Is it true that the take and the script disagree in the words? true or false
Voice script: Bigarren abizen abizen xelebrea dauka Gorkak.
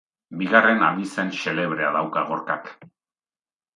true